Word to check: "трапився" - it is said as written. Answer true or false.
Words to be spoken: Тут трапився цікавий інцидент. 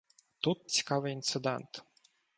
false